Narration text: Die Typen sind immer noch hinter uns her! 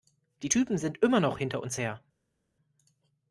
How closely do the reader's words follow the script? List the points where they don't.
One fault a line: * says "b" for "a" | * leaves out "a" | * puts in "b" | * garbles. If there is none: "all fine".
all fine